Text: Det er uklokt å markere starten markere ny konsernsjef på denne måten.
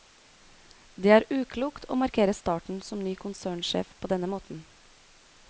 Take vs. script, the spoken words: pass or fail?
fail